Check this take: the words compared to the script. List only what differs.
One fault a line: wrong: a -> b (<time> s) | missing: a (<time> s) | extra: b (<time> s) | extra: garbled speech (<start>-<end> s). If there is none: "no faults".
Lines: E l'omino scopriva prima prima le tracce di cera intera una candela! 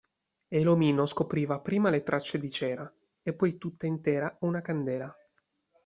missing: prima (1.9 s)
extra: e poi tutta (3.2 s)